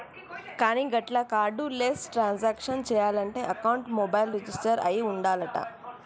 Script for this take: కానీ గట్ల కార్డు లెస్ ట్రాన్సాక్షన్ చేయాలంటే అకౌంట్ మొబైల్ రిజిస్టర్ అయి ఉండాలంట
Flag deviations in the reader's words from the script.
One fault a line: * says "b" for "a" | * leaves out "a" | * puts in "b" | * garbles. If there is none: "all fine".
all fine